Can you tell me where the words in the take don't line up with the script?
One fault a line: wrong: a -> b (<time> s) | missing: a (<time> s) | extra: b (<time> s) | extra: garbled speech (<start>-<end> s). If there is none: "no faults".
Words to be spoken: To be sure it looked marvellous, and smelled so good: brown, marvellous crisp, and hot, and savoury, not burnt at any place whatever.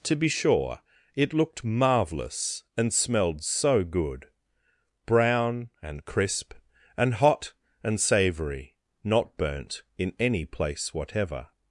wrong: marvellous -> and (5.8 s)
wrong: at -> in (10.0 s)